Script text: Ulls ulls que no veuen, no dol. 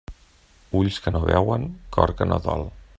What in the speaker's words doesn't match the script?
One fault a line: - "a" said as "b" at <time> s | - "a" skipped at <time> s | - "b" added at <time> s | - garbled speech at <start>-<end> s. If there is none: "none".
- "ulls" skipped at 1.0 s
- "cor que" added at 2.0 s